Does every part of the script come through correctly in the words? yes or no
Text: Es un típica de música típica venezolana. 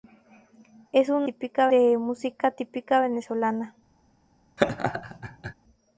yes